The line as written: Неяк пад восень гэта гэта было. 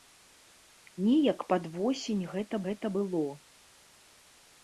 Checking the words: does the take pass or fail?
pass